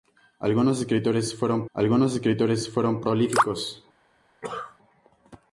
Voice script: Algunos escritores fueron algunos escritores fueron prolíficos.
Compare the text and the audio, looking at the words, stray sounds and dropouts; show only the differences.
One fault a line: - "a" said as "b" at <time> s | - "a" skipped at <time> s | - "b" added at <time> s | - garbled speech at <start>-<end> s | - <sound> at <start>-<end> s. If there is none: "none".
- cough at 4.4-4.8 s